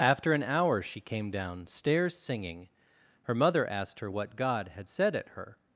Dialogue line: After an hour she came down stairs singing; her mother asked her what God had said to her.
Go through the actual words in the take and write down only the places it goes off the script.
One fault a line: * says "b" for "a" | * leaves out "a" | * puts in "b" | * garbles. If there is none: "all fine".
* says "at" for "to"